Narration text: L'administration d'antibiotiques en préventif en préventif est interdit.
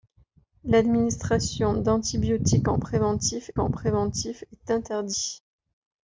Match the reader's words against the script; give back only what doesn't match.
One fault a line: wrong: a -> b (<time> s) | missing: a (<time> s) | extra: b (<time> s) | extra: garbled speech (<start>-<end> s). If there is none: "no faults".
no faults